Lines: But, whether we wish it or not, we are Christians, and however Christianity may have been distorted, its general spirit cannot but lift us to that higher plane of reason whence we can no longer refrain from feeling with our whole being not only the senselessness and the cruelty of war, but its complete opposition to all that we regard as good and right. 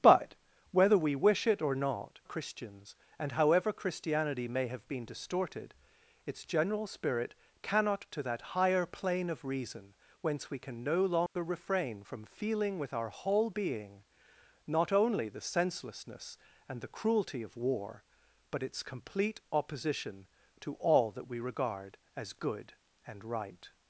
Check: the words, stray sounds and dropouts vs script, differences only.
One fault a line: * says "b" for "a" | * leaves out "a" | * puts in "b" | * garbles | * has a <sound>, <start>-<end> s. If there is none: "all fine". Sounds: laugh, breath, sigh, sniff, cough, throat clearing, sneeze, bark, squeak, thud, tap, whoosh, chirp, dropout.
* leaves out "we are"
* leaves out "but lift us"
* has a dropout, 11.3-11.4 s